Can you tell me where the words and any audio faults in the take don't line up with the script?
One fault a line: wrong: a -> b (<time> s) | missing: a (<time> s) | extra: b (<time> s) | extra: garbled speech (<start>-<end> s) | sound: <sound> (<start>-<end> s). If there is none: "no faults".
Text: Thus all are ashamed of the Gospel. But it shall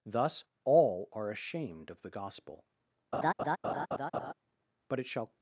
sound: laugh (3.1-4.3 s)